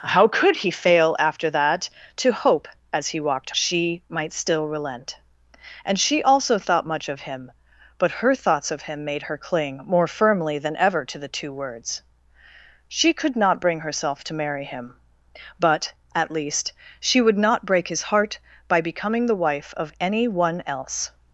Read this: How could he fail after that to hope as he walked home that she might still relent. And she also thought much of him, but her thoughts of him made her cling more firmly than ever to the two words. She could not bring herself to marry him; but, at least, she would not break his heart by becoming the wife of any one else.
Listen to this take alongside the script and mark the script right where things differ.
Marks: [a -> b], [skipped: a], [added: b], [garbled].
How could he fail after that to hope as he walked [skipped: home that] she might still relent. And she also thought much of him, but her thoughts of him made her cling more firmly than ever to the two words. She could not bring herself to marry him; but, at least, she would not break his heart by becoming the wife of any one else.